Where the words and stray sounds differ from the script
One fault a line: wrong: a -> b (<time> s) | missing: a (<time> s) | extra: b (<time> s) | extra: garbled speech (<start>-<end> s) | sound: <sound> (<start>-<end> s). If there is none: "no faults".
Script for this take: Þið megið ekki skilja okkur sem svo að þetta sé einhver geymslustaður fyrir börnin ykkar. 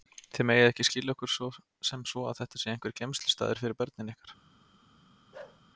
sound: bark (5.3-5.6 s)